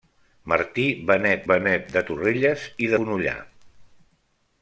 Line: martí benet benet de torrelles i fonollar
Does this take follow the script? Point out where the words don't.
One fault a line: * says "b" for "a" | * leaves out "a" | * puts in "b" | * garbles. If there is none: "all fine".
all fine